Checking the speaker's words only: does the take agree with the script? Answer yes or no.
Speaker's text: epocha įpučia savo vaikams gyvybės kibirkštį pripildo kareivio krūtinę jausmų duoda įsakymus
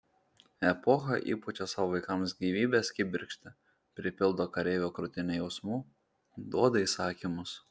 yes